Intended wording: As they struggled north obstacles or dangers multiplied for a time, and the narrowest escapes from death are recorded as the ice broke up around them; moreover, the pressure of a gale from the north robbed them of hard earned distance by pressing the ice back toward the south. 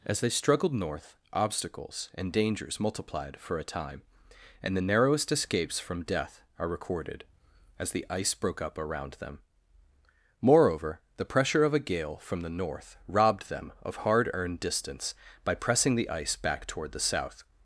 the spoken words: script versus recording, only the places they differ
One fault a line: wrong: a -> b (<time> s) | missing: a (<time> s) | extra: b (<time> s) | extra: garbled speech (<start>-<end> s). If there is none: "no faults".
wrong: or -> and (2.1 s)